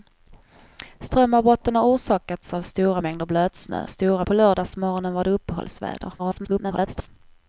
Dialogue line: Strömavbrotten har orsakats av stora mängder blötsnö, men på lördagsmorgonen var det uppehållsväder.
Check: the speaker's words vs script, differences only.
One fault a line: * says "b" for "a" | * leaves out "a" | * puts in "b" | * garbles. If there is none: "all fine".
* says "stora" for "men"
* garbles